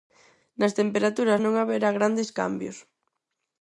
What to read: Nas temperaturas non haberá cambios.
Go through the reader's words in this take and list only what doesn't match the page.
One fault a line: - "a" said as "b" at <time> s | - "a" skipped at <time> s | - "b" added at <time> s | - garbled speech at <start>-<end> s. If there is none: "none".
- "grandes" added at 2.0 s